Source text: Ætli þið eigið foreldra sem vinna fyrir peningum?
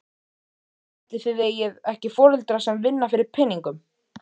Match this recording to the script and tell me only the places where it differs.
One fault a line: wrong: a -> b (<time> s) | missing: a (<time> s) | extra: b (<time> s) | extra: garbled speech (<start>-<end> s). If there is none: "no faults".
extra: ekki (1.9 s)